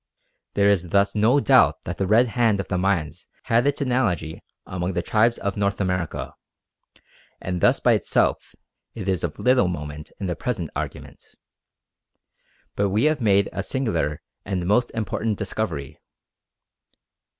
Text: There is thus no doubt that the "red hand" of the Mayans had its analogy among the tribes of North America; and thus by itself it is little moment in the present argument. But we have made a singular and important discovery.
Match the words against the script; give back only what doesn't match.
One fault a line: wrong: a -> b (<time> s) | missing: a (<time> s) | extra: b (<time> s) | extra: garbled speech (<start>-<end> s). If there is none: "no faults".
extra: of (9.2 s)
extra: most (14.7 s)